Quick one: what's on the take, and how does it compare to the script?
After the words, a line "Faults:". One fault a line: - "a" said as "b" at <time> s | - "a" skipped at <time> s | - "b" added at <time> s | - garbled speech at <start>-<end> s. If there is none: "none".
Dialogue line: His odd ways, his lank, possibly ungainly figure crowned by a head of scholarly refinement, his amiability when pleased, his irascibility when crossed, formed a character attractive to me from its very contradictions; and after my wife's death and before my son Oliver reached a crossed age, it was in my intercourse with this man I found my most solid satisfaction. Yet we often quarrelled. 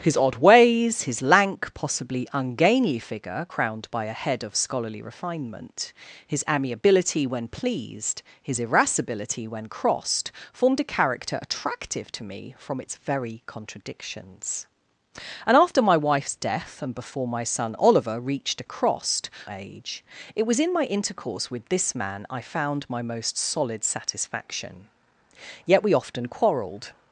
His odd ways, his lank, possibly ungainly figure crowned by a head of scholarly refinement, his amiability when pleased, his irascibility when crossed, formed a character attractive to me from its very contradictions; and after my wife's death and before my son Oliver reached a crossed age, it was in my intercourse with this man I found my most solid satisfaction. Yet we often quarrelled.
Faults:
none